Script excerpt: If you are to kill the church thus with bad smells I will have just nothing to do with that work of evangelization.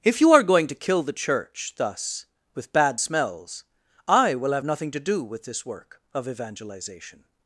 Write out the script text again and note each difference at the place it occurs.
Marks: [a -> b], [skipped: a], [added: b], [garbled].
If you are [added: going] to kill the church thus with bad smells I will have [skipped: just] nothing to do with [that -> this] work of evangelization.